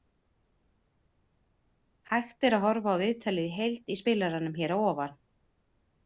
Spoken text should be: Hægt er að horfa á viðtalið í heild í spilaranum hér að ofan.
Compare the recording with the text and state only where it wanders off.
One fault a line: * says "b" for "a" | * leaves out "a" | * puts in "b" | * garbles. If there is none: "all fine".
all fine